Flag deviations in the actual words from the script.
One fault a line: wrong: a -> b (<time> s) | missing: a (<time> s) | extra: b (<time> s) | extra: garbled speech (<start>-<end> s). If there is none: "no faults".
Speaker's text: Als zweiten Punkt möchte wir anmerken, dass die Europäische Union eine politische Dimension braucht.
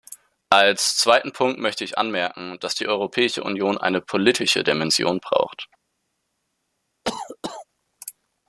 wrong: wir -> ich (1.8 s)